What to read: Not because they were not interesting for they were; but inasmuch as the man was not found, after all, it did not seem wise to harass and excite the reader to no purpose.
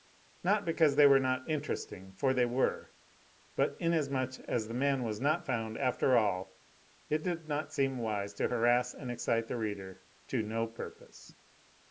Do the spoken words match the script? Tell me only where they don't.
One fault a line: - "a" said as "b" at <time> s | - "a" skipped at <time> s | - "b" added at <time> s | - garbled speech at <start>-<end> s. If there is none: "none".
none